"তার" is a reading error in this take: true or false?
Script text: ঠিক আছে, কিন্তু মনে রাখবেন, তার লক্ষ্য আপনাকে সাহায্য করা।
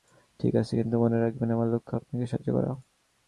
true